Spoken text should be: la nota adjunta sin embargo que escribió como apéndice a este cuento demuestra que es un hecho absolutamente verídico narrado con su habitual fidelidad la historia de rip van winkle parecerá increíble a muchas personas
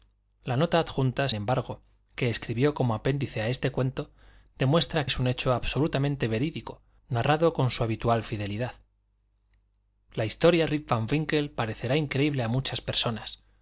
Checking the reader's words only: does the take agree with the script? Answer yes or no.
no